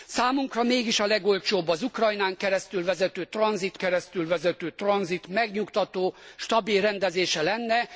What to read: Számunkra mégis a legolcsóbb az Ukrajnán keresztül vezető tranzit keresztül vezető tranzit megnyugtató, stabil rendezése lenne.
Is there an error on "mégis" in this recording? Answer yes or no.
no